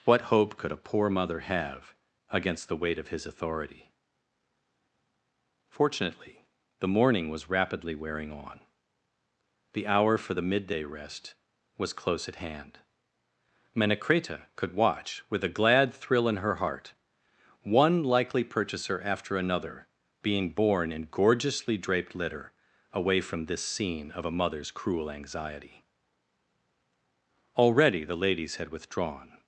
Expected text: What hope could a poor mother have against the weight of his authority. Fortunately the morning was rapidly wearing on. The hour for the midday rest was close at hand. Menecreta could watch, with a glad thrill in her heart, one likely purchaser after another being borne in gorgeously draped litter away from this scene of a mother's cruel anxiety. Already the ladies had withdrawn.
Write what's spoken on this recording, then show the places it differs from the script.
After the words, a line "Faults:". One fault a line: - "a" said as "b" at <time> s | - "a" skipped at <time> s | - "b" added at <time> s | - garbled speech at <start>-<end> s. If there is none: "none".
What hope could a poor mother have against the weight of his authority. Fortunately the morning was rapidly wearing on. The hour for the midday rest was close at hand. Menecreta could watch, with a glad thrill in her heart, one likely purchaser after another being borne in gorgeously draped litter away from this scene of a mother's cruel anxiety. Already the ladies had withdrawn.
Faults:
none